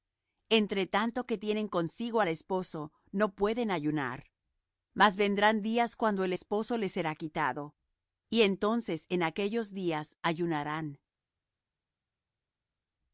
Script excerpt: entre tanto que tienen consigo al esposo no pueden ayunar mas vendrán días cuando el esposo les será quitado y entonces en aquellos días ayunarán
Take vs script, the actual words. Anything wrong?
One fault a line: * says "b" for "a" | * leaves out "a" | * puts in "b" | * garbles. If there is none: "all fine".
all fine